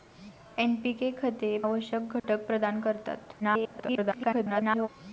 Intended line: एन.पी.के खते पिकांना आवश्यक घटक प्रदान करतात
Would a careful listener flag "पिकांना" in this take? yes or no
yes